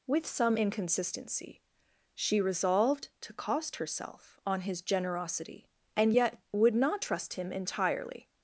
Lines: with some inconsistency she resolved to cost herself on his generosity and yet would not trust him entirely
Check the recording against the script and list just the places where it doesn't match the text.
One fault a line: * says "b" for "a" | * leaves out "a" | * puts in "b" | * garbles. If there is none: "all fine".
all fine